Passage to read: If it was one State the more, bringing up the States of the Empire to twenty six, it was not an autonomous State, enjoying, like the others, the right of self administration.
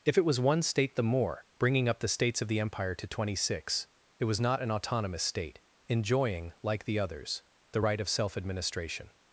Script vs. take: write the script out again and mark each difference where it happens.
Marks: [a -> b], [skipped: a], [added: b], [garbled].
If it was one State the more, bringing up the States of the Empire to twenty six, it was not an autonomous State, enjoying, like the others, the right of self administration.